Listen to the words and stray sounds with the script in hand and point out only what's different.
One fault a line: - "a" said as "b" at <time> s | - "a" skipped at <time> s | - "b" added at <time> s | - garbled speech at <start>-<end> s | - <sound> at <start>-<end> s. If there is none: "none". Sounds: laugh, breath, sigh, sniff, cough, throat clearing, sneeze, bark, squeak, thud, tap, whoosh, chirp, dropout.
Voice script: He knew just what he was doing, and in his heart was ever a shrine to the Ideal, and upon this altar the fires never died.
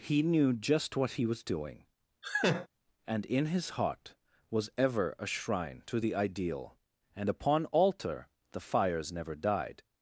- laugh at 2.2-2.7 s
- "this" skipped at 7.7 s